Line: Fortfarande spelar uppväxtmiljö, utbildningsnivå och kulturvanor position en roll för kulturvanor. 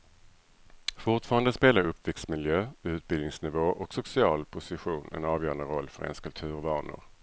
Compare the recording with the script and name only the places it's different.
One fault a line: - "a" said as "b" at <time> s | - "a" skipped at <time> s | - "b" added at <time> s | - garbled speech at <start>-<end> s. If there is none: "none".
- "kulturvanor" said as "social" at 3.9 s
- "avgörande" added at 5.2 s
- "ens" added at 6.0 s